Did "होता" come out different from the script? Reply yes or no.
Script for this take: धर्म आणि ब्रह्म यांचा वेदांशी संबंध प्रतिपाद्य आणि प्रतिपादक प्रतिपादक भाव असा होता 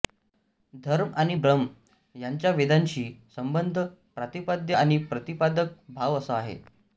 yes